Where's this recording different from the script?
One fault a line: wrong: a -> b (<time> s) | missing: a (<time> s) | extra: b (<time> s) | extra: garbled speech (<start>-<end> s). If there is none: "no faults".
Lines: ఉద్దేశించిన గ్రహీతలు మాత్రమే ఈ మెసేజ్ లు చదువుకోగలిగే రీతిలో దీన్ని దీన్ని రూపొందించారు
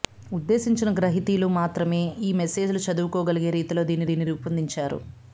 no faults